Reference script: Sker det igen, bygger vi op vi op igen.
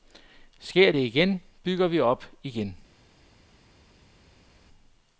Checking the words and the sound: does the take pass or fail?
fail